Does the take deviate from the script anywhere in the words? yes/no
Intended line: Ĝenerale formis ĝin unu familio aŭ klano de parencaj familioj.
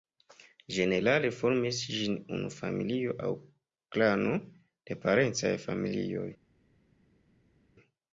no